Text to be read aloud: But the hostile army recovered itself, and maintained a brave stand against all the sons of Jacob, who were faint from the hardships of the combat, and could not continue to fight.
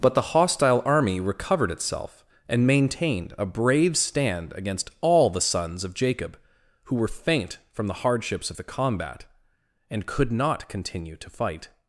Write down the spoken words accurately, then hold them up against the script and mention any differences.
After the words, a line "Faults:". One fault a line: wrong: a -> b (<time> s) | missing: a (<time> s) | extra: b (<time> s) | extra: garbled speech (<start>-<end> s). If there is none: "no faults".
But the hostile army recovered itself, and maintained a brave stand against all the sons of Jacob, who were faint from the hardships of the combat, and could not continue to fight.
Faults:
no faults